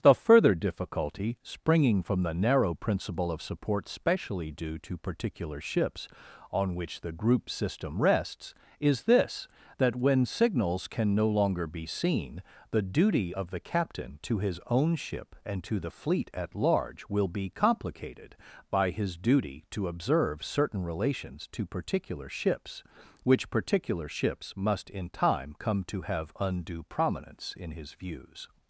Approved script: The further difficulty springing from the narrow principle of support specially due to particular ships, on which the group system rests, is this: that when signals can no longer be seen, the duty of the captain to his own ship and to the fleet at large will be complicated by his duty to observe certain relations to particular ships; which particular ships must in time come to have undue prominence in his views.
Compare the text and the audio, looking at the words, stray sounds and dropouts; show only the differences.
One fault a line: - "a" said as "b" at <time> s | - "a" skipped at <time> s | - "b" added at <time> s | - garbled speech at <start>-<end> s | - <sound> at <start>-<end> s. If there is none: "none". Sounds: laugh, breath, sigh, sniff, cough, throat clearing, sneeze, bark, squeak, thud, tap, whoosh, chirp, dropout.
none